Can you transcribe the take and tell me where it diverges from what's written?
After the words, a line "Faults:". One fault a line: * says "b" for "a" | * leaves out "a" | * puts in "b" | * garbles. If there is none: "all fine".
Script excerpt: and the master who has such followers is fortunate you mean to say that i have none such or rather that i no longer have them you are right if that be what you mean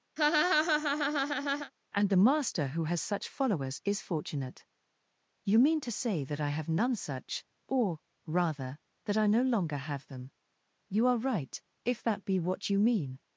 and the master who has such followers is fortunate you mean to say that i have none such or rather that i no longer have them you are right if that be what you mean
Faults:
all fine